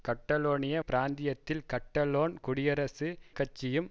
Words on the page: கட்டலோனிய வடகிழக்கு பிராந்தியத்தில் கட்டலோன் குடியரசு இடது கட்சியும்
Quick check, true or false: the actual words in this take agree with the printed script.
false